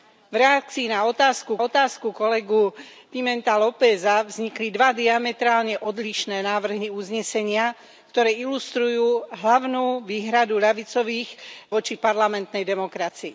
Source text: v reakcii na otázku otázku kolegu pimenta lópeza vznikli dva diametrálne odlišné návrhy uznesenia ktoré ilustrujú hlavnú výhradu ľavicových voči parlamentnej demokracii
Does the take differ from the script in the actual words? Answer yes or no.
no